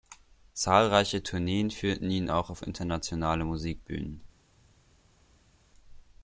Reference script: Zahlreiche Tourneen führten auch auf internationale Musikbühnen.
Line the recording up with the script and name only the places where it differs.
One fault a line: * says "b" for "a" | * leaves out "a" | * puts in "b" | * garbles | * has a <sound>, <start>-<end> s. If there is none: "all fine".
* puts in "ihn"